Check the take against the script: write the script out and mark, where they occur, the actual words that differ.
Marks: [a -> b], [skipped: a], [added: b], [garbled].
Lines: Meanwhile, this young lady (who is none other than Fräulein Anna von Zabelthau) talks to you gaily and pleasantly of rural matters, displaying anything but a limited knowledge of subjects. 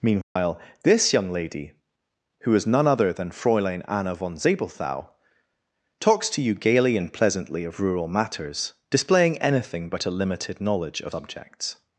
Meanwhile, this young lady (who is none other than Fräulein Anna von Zabelthau) talks to you gaily and pleasantly of rural matters, displaying anything but a limited knowledge of subjects.